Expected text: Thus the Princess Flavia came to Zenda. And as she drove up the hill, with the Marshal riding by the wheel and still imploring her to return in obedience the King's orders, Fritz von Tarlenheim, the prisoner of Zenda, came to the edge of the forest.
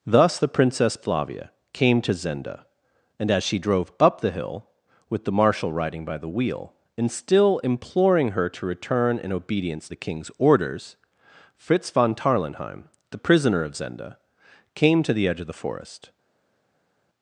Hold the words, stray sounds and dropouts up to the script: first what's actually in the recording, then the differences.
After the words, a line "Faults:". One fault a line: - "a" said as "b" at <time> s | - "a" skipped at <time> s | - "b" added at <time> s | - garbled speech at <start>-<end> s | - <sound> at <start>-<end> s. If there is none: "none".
Thus the Princess Flavia came to Zenda. And as she drove up the hill, with the Marshal riding by the wheel and still imploring her to return in obedience the King's orders, Fritz von Tarlenheim, the prisoner of Zenda, came to the edge of the forest.
Faults:
none